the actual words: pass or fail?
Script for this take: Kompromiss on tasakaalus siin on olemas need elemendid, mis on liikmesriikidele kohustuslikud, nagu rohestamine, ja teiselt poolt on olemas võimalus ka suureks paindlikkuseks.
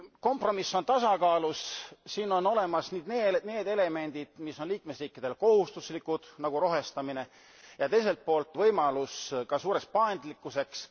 fail